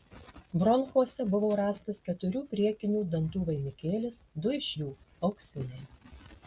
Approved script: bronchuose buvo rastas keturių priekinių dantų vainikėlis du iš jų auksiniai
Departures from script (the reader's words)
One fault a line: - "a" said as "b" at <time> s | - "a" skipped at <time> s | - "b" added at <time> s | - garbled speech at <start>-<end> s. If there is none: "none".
none